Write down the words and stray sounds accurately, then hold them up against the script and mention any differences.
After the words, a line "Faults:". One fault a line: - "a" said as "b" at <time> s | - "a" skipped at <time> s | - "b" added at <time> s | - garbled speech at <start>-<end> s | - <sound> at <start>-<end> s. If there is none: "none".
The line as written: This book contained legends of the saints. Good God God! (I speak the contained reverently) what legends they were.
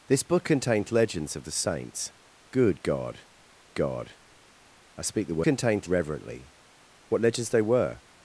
This book contained legends of the saints. Good God God! (I speak the contained reverently) what legends they were.
Faults:
none